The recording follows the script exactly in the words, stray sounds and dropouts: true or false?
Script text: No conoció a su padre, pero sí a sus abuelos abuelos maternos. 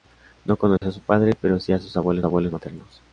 false